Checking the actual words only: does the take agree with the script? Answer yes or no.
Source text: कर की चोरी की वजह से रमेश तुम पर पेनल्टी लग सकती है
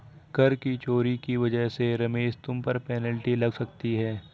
yes